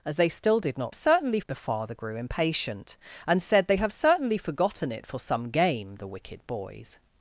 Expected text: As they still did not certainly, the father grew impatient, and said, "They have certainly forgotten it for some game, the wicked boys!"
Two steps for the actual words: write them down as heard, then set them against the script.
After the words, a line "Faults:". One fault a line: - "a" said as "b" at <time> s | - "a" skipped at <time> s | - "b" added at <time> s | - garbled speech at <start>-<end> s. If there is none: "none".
As they still did not certainly, the father grew impatient, and said, "They have certainly forgotten it for some game, the wicked boys!"
Faults:
none